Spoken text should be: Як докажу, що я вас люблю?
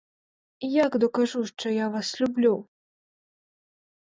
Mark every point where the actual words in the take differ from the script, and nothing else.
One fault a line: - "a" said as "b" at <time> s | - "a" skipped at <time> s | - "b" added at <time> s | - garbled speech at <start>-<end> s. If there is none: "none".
none